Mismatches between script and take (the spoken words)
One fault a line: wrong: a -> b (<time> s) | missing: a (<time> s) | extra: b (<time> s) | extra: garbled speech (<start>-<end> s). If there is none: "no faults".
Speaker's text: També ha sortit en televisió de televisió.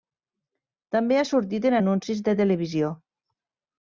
wrong: televisió -> anuncis (1.8 s)